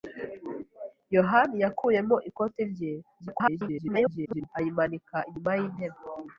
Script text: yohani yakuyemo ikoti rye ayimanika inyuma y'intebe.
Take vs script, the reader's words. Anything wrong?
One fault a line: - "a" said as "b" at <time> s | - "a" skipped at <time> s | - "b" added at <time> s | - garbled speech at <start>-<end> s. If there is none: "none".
- garbled speech at 3.2-4.5 s